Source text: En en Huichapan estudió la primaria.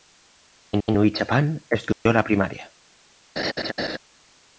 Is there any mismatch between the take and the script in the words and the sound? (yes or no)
yes